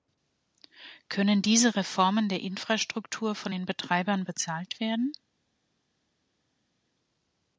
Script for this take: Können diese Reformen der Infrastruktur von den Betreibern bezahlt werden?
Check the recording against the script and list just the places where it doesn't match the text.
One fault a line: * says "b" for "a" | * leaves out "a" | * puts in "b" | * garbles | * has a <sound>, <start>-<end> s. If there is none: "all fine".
all fine